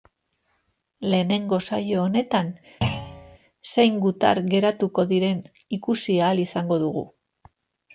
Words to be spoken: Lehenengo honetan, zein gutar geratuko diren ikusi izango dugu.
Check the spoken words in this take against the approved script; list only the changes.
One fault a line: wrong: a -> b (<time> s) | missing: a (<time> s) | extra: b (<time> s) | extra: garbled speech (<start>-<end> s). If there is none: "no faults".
extra: saio (1.6 s)
extra: ahal (6.3 s)